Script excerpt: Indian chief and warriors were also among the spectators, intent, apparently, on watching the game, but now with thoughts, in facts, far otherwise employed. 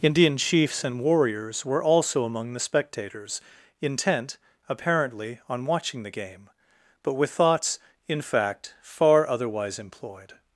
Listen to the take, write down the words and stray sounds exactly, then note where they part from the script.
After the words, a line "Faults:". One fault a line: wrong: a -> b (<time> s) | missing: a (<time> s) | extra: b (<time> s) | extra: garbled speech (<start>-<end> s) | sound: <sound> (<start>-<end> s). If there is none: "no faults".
Indian chiefs and warriors were also among the spectators, intent, apparently, on watching the game, but with thoughts, in fact, far otherwise employed.
Faults:
wrong: chief -> chiefs (0.3 s)
missing: now (7.1 s)
wrong: facts -> fact (8.2 s)